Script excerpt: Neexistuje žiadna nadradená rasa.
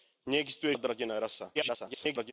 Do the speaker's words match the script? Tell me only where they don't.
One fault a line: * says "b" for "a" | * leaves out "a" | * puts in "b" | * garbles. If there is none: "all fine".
* leaves out "žiadna"
* garbles